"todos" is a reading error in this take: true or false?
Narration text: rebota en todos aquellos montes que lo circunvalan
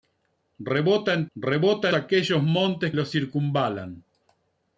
true